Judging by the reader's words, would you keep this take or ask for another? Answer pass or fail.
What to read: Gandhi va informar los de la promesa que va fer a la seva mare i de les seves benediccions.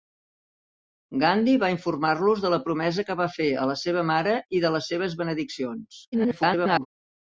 fail